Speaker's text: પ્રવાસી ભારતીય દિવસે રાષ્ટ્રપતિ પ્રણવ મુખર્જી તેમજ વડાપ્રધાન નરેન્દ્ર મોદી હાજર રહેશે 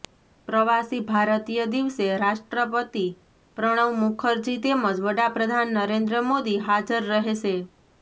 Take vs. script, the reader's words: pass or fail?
pass